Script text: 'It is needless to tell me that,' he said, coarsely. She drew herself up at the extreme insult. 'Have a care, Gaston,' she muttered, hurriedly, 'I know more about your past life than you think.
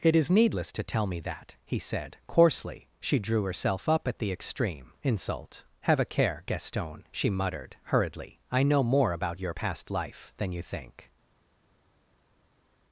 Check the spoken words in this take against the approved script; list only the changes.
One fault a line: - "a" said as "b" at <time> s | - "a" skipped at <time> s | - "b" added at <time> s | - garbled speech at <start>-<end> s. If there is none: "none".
none